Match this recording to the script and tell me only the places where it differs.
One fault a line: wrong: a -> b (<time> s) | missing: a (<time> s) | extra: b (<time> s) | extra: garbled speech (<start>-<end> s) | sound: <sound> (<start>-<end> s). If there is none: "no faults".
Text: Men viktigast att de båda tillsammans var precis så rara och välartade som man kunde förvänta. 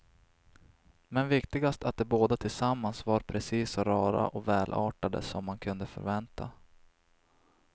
no faults